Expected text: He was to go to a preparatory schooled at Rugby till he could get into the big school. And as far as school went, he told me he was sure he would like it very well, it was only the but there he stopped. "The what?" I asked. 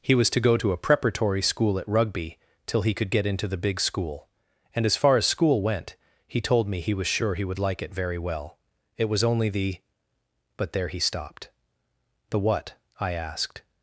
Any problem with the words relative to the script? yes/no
yes